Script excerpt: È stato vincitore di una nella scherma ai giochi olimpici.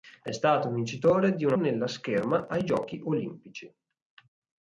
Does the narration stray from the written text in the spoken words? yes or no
no